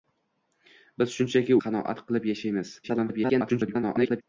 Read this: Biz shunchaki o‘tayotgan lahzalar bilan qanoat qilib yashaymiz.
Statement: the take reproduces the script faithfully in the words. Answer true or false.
false